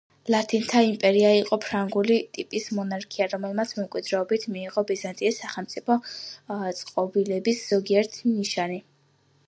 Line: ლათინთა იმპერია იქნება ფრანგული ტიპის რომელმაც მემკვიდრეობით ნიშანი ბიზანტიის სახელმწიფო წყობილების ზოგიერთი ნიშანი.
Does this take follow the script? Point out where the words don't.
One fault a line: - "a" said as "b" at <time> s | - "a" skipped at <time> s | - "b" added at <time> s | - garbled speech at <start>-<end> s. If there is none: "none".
- "იქნება" said as "იყო" at 1.4 s
- "მონარქია" added at 2.8 s
- "ნიშანი" said as "მიიღო" at 4.5 s